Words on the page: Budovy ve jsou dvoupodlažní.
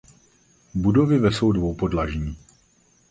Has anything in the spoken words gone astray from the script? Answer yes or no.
no